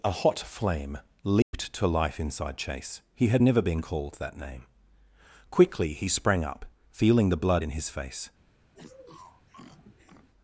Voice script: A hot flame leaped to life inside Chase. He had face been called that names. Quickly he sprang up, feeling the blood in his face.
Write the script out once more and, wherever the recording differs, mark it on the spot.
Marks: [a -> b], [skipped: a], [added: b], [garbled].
A hot flame leaped to life inside Chase. He had [face -> never] been called that [names. -> name] Quickly he sprang up, feeling the blood in his face.